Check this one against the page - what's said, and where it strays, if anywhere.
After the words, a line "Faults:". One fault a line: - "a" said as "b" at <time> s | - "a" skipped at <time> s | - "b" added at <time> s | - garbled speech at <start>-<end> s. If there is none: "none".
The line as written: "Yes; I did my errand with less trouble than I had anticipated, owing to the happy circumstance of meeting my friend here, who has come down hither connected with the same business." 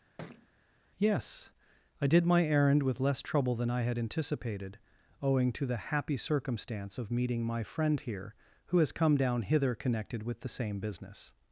"Yes; I did my errand with less trouble than I had anticipated, owing to the happy circumstance of meeting my friend here, who has come down hither connected with the same business."
Faults:
none